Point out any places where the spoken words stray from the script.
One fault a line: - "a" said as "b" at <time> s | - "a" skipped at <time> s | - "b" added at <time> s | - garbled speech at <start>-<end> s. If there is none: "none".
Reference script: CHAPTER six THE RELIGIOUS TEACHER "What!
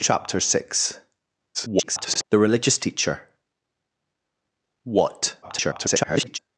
- garbled speech at 1.5-2.2 s
- garbled speech at 5.4-6.4 s